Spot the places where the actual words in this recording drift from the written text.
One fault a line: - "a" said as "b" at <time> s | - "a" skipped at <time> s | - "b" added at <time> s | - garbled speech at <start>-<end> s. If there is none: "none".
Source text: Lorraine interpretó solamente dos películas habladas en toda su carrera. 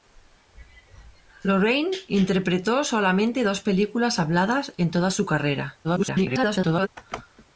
- garbled speech at 5.8-6.9 s